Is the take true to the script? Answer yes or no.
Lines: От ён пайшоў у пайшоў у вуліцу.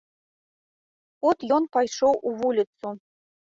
no